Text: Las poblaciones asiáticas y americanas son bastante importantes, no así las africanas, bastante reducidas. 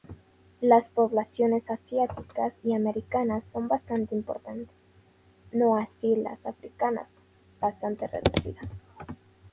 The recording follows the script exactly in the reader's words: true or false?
true